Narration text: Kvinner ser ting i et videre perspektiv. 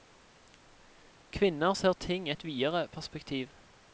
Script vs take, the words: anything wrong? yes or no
no